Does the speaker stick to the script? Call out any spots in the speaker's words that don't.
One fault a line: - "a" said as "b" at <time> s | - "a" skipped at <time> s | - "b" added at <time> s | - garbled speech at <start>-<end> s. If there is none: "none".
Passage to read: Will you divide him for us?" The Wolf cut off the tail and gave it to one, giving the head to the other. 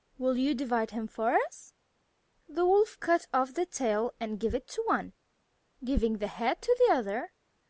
none